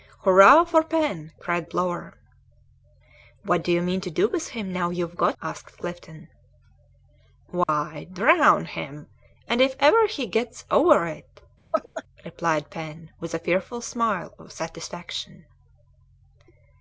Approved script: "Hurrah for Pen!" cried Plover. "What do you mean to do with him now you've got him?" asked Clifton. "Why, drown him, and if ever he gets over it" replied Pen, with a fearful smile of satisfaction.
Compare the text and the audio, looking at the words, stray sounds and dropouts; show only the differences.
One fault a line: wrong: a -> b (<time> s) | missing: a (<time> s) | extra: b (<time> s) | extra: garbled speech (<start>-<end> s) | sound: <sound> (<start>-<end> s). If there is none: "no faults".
missing: him (5.4 s)
sound: dropout (7.6-7.7 s)
sound: laugh (11.7-12.0 s)